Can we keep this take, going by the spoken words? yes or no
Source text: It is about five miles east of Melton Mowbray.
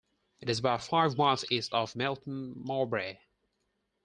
yes